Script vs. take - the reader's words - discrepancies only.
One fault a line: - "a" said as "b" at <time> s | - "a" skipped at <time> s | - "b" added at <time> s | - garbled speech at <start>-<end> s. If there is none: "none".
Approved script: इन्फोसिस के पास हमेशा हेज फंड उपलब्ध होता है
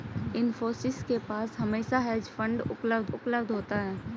- "उपलब्ध" added at 3.0 s